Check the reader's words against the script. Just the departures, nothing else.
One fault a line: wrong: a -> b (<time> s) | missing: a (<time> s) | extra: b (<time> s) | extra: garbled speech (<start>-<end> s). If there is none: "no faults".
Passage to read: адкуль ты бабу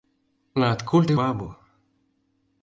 no faults